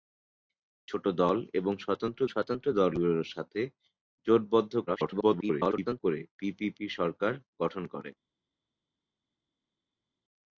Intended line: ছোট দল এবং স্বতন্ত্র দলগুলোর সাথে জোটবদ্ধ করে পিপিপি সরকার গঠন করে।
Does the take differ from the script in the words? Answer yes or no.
yes